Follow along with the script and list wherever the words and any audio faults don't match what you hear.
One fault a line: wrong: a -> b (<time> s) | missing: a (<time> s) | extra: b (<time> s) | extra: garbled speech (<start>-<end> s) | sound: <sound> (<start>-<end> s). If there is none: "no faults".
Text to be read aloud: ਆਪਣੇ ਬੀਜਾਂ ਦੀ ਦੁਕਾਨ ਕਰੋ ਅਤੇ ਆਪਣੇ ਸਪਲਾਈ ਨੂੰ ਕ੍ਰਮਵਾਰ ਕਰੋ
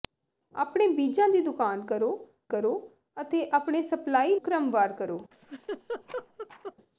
extra: ਕਰੋ (2.5 s)
missing: ਨੂੰ (4.4 s)
sound: laugh (5.3-6.7 s)